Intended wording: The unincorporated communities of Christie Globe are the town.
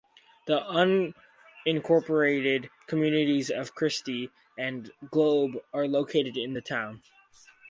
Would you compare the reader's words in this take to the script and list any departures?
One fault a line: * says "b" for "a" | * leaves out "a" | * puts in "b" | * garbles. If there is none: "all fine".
* puts in "and"
* puts in "located in"